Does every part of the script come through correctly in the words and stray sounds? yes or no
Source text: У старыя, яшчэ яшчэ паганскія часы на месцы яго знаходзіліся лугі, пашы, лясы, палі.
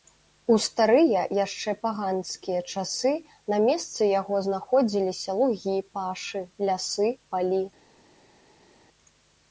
no